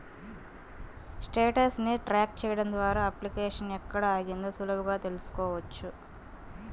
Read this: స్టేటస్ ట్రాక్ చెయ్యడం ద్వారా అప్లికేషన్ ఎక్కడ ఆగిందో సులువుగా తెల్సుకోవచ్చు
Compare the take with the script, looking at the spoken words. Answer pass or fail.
fail